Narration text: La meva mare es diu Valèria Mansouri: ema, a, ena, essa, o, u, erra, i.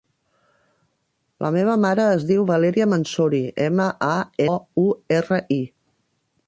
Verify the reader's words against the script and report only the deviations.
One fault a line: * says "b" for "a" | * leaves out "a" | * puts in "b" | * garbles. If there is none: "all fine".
* leaves out "ena essa"